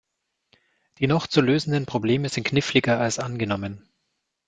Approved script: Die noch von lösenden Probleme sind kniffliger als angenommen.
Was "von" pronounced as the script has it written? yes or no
no